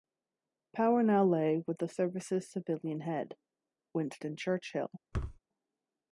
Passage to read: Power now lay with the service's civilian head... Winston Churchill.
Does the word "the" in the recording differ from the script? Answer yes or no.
no